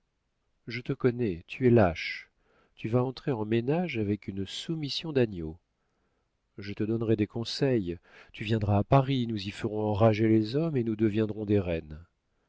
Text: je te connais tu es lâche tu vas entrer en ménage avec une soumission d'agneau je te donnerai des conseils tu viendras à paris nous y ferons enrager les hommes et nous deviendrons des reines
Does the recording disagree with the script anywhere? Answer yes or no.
no